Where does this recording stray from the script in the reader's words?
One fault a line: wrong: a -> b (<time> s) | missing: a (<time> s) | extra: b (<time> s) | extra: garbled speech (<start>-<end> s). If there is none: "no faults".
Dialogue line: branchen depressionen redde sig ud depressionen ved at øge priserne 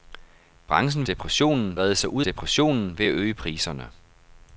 no faults